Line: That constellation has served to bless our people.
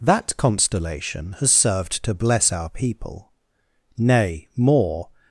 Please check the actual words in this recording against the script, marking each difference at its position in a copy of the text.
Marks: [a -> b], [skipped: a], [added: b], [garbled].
That constellation has served to bless our people. [added: Nay more]